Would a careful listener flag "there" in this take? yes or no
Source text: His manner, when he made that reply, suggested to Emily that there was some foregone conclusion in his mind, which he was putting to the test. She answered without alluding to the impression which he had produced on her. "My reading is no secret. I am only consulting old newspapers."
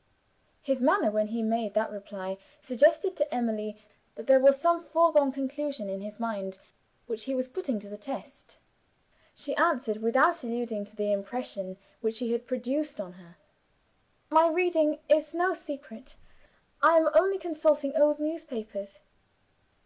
no